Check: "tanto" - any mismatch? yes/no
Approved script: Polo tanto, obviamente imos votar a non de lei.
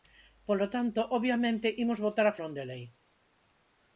no